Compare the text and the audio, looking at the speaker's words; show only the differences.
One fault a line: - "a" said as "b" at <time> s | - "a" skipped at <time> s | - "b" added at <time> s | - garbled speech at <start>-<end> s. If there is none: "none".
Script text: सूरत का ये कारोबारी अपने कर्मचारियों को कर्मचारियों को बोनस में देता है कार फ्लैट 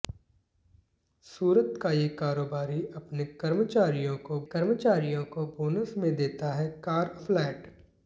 none